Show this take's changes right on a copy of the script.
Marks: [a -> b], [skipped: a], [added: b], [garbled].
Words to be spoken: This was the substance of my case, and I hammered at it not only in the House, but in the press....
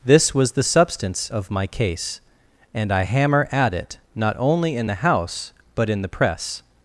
This was the substance of my case, and I [hammered -> hammer] at it not only in the House, but in the press....